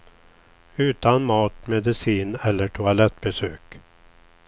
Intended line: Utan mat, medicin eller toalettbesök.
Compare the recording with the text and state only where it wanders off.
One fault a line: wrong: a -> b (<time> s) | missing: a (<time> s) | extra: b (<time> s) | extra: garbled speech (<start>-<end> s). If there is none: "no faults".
no faults